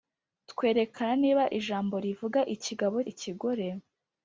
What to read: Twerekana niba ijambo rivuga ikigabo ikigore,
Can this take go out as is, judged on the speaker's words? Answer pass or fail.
pass